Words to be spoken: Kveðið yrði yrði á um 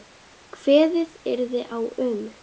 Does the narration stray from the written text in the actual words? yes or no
yes